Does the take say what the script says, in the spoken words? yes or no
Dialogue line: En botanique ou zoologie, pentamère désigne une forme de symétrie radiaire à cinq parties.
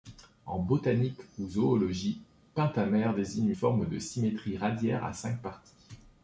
no